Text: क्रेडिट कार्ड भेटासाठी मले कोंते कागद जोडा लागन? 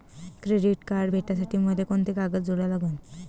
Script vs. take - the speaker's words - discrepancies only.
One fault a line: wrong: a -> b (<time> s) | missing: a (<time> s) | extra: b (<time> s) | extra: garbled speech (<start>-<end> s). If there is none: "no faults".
no faults